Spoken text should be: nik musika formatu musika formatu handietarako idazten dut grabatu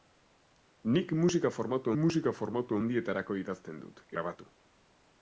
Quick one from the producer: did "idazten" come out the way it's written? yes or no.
yes